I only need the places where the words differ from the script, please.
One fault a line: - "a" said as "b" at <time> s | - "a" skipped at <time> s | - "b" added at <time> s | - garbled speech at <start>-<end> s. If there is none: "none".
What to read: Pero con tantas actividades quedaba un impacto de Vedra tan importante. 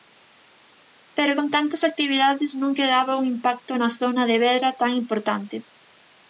- "non" added at 2.6 s
- "na zona" added at 3.8 s